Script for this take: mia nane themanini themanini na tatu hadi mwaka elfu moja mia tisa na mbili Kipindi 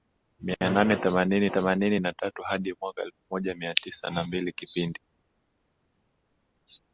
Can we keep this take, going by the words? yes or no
yes